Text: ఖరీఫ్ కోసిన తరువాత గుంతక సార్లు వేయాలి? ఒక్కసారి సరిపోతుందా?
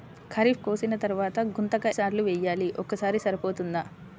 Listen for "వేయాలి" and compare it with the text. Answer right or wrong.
right